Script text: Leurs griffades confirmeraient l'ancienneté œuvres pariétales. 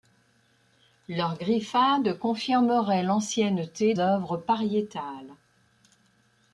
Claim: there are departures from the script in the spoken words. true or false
false